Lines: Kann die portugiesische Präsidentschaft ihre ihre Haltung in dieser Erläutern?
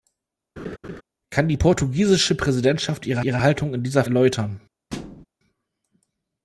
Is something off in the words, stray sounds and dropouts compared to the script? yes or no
yes